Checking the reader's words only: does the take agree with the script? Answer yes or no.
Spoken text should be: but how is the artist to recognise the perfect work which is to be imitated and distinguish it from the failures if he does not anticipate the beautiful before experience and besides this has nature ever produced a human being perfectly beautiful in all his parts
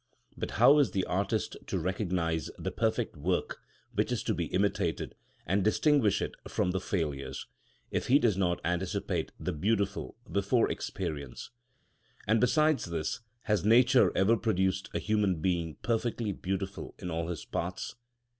yes